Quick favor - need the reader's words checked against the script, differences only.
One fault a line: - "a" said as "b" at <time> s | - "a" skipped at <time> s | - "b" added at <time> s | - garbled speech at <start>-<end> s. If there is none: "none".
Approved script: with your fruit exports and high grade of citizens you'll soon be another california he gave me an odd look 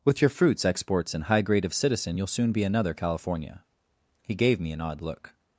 - "fruit" said as "fruits" at 0.3 s
- "citizens" said as "citizen" at 1.7 s